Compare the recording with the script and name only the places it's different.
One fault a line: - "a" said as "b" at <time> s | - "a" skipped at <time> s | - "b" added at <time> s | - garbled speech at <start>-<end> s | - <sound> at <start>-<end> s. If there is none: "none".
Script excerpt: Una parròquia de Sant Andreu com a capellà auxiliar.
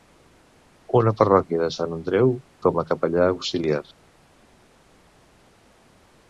none